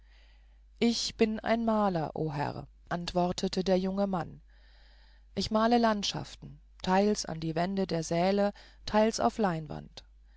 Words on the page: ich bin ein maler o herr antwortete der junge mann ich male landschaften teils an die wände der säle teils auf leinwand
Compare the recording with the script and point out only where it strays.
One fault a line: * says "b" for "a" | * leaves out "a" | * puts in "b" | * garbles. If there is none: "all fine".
all fine